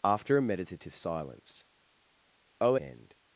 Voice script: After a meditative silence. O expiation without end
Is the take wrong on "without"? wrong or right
wrong